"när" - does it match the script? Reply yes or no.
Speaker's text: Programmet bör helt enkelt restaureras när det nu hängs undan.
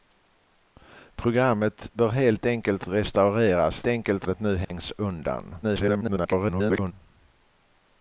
no